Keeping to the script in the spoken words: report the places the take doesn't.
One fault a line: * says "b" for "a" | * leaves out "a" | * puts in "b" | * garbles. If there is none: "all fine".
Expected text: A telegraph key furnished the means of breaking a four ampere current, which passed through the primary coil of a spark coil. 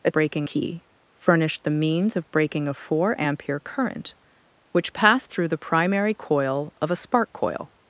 * says "breaking" for "telegraph"